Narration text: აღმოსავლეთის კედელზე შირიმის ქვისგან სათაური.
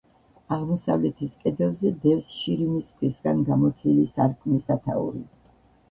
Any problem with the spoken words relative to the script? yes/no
yes